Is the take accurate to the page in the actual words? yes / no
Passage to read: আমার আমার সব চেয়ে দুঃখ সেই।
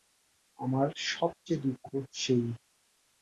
no